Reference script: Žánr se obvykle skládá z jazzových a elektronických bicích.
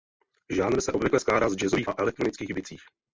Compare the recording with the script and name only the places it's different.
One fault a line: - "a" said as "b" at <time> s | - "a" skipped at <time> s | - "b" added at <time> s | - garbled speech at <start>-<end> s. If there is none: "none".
none